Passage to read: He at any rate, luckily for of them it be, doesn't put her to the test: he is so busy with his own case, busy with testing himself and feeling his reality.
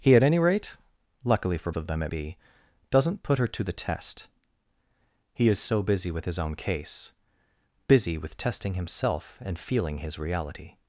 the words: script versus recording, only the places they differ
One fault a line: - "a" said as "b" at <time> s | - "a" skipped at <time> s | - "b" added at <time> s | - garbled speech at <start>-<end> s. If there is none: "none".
none